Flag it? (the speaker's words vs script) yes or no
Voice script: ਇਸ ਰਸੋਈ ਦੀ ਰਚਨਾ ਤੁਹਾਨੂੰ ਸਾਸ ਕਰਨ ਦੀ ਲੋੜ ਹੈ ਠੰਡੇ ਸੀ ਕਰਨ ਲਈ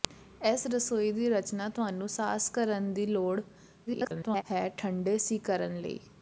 yes